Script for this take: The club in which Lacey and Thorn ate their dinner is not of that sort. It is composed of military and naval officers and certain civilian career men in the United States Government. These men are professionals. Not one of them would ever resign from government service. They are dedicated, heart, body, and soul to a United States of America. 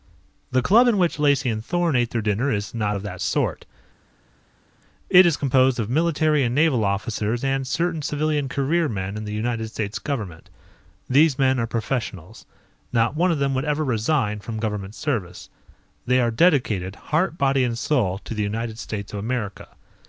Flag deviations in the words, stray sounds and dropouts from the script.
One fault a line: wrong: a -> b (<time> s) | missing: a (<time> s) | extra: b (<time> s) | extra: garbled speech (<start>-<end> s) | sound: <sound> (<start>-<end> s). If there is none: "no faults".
wrong: a -> the (18.3 s)